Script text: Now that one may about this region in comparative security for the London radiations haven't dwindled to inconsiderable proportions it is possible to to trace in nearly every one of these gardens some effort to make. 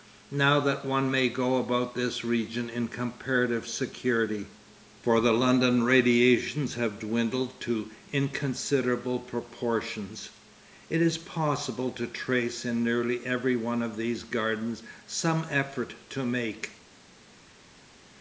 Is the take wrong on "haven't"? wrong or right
wrong